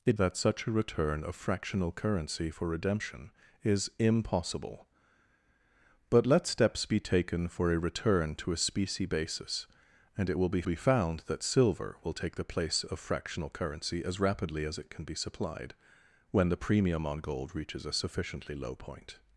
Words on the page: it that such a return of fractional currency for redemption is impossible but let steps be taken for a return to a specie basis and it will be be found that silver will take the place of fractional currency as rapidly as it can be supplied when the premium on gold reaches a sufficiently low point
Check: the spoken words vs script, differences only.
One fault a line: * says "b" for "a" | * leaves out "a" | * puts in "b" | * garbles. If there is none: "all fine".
all fine